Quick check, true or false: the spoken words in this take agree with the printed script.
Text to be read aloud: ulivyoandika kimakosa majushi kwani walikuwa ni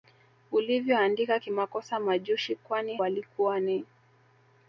true